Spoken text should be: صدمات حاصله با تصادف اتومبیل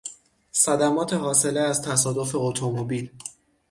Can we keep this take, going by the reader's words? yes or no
no